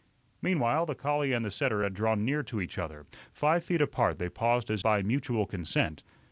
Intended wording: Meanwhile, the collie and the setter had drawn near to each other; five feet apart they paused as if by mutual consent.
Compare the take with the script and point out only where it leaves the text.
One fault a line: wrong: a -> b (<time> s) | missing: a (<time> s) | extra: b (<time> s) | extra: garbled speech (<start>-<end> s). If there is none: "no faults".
missing: if (4.8 s)